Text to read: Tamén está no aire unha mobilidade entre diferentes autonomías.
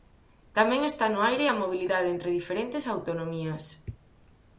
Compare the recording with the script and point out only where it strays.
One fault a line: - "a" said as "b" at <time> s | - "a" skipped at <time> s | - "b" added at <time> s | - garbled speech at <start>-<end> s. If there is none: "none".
- "unha" said as "a" at 1.5 s